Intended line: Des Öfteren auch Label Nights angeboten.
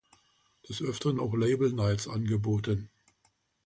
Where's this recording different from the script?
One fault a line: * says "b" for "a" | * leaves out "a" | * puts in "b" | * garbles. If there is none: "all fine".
all fine